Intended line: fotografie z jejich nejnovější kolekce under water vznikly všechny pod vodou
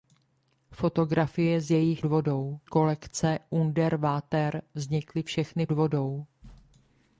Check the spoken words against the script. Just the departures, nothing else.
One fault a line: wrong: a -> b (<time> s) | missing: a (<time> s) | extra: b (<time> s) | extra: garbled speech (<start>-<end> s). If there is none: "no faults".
wrong: nejnovější -> vodou (2.1 s)
missing: pod (5.7 s)